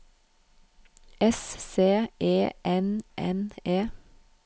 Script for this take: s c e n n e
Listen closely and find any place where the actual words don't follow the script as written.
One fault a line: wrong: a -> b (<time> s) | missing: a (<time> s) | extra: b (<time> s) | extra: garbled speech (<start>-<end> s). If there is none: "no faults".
no faults